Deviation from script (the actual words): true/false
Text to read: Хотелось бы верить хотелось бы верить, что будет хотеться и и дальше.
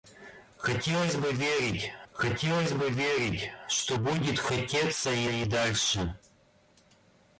false